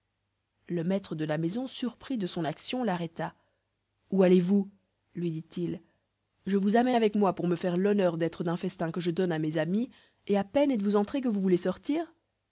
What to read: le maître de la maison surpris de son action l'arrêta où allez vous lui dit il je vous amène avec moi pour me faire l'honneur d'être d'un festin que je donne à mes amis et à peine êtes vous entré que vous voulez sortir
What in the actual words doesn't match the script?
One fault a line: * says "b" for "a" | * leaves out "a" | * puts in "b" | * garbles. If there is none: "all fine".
all fine